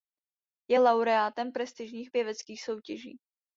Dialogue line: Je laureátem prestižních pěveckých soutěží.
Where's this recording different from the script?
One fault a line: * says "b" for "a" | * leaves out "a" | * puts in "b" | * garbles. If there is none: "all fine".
all fine